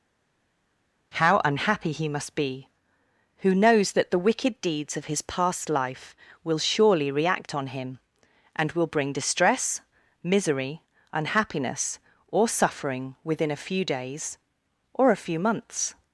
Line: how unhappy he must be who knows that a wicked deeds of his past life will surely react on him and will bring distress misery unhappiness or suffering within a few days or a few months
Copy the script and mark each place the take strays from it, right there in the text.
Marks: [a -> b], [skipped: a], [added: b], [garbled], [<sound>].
how unhappy he must be who knows that [a -> the] wicked deeds of his past life will surely react on him and will bring distress misery unhappiness or suffering within a few days or a few months